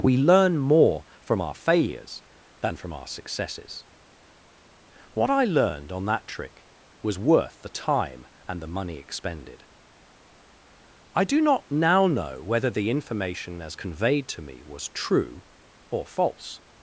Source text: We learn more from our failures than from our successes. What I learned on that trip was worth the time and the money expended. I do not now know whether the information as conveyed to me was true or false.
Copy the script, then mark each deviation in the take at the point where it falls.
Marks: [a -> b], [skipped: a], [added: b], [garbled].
We learn more from our failures than from our successes. What I learned on that [trip -> trick] was worth the time and the money expended. I do not now know whether the information as conveyed to me was true or false.